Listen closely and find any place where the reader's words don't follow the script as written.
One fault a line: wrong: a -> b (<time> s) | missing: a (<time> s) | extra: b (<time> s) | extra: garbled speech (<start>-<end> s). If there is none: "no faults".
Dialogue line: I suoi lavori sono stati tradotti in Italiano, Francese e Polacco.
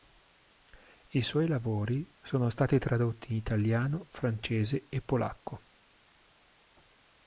no faults